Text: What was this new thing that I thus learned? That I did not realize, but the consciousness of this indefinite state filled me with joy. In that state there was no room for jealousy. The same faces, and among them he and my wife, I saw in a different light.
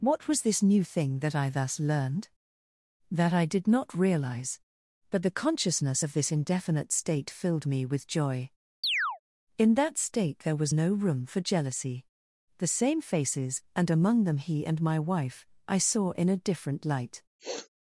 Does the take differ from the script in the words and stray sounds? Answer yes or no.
yes